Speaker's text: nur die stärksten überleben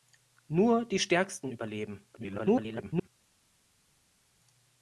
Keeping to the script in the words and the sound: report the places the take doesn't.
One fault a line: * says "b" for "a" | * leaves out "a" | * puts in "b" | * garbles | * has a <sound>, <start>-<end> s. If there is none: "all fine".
* garbles